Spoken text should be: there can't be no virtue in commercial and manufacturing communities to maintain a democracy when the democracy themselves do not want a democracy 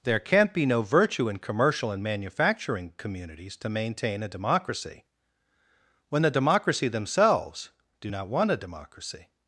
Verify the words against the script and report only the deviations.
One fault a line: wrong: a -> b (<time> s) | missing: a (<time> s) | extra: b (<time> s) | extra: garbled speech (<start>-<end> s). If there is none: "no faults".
no faults